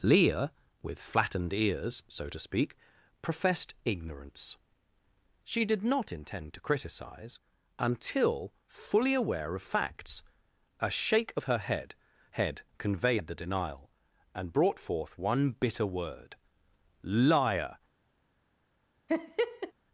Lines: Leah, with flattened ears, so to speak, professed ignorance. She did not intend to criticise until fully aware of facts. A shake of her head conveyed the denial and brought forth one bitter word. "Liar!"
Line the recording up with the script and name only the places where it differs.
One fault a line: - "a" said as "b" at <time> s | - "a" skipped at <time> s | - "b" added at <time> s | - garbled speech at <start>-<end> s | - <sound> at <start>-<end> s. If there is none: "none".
- "head" added at 12.3 s
- laugh at 19.1-19.7 s